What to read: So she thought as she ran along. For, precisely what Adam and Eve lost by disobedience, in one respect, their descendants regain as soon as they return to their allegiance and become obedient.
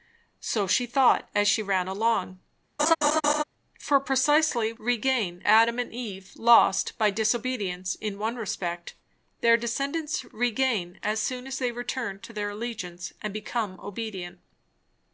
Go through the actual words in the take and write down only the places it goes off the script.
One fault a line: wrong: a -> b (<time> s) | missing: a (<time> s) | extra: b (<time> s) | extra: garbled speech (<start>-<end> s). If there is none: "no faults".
wrong: what -> regain (4.8 s)